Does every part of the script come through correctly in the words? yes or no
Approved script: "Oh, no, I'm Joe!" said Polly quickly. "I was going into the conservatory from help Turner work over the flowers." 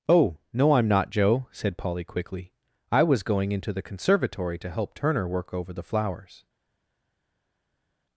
no